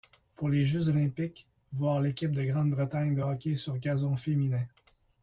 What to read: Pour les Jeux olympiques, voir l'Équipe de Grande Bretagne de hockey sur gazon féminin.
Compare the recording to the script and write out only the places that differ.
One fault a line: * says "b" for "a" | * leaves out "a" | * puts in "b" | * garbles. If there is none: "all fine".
all fine